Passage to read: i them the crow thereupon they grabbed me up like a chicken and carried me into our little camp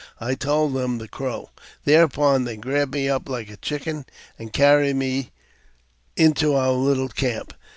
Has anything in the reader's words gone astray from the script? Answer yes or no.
yes